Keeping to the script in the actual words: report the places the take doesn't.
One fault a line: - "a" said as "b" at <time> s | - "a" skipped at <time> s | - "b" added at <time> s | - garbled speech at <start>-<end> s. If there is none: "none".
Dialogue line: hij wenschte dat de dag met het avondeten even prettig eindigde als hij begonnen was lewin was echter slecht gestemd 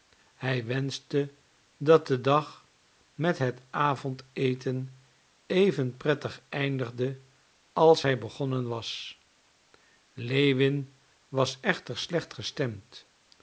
none